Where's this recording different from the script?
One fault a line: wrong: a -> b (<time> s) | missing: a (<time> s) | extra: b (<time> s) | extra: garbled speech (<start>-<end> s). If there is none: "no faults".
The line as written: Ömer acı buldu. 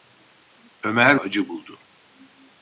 no faults